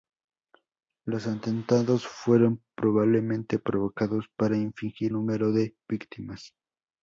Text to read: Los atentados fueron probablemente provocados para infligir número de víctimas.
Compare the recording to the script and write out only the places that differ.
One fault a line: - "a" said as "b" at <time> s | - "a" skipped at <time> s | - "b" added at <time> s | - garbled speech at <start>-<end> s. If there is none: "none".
none